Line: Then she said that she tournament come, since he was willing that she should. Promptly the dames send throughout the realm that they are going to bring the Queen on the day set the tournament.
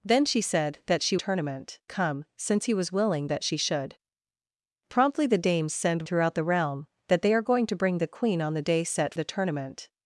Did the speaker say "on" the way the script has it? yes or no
yes